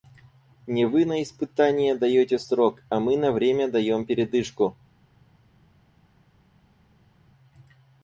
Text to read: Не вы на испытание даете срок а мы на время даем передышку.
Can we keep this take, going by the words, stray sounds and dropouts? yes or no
yes